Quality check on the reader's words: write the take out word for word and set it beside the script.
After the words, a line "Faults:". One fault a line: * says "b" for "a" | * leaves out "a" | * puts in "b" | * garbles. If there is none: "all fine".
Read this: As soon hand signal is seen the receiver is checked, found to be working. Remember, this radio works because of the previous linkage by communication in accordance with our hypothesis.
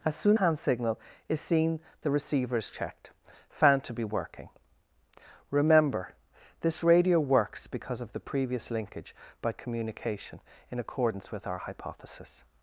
As soon hand signal is seen the receiver is checked, found to be working. Remember, this radio works because of the previous linkage by communication in accordance with our hypothesis.
Faults:
all fine